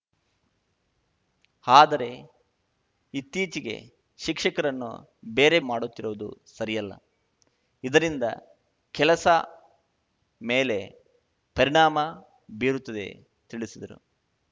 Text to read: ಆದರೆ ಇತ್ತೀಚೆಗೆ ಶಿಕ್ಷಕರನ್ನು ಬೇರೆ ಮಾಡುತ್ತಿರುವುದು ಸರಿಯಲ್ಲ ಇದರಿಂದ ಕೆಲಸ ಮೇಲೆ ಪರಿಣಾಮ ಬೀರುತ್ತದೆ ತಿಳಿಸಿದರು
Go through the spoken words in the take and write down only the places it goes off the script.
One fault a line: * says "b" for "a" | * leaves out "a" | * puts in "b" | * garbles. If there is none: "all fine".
all fine